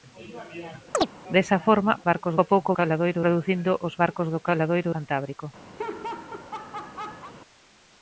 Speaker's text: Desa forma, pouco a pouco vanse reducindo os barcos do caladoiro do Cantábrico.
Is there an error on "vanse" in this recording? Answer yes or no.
yes